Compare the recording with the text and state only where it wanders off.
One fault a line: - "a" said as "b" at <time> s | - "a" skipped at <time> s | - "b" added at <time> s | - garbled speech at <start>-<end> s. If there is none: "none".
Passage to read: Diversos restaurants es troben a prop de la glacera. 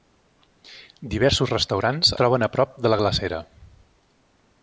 - "es" skipped at 2.1 s